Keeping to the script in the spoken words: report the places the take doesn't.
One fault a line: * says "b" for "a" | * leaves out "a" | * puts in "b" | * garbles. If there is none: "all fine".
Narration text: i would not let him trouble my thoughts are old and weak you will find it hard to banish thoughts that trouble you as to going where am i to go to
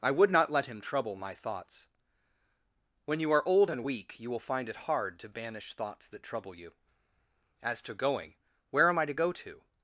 * puts in "when you"